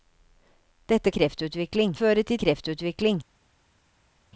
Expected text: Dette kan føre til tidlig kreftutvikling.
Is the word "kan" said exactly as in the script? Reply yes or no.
no